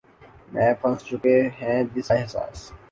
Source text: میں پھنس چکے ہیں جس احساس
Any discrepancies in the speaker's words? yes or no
no